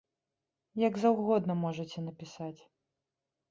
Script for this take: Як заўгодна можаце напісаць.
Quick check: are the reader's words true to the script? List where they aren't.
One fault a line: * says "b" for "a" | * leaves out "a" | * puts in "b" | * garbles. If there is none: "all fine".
all fine